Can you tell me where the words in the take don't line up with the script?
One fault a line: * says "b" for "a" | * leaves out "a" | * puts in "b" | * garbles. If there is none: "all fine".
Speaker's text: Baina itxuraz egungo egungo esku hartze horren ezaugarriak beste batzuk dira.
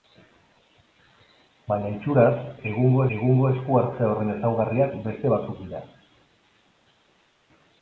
all fine